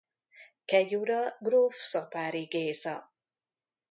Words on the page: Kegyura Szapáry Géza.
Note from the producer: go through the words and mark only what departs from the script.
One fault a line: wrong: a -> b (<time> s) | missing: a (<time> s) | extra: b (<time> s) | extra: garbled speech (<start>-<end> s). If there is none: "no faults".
extra: gróf (1.4 s)